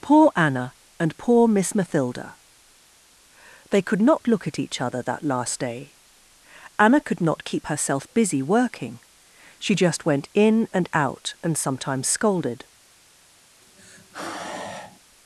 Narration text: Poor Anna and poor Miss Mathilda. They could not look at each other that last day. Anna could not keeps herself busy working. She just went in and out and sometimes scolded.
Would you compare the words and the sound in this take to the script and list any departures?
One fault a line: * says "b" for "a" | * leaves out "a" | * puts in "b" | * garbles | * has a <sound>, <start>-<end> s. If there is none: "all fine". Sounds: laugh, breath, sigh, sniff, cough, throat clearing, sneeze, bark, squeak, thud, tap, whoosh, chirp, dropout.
* says "keep" for "keeps"
* has a sigh, 13.6-15.0 s